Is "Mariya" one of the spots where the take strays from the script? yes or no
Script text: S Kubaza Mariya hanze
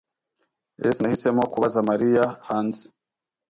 no